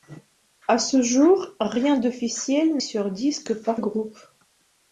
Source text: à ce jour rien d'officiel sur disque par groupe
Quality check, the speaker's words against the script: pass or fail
pass